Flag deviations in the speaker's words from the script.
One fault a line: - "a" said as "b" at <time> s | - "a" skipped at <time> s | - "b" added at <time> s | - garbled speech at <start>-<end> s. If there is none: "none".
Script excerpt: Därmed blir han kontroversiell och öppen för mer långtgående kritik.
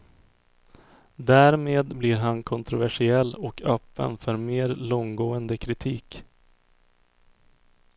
none